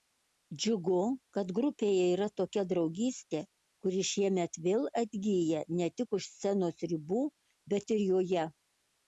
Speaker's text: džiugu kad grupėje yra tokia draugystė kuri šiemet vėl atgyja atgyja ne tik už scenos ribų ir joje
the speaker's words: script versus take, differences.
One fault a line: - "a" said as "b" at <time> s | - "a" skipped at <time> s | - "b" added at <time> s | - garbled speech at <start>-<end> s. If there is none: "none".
- "atgyja" skipped at 5.6 s
- "bet" added at 7.8 s